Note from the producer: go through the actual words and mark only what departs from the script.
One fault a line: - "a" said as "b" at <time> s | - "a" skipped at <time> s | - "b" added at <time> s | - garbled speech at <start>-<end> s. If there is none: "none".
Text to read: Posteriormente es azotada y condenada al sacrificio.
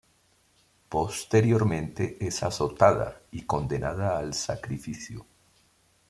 none